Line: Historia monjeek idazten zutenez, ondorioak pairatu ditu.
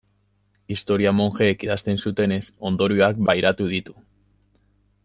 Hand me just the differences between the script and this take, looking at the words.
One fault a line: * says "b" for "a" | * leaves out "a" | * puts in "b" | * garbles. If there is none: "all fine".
all fine